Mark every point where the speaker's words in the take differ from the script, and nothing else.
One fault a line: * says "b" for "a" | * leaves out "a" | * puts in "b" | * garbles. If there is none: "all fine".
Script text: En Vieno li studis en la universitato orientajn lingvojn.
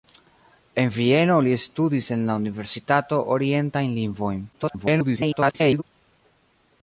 * garbles